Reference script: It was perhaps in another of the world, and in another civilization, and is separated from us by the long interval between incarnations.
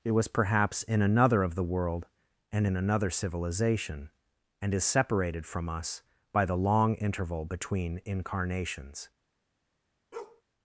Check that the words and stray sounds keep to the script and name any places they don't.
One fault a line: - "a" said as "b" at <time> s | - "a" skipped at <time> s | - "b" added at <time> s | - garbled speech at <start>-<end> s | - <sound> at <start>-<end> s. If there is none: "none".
- bark at 10.1-10.4 s